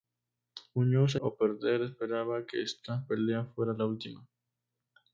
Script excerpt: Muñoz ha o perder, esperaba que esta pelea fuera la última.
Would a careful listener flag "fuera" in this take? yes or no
no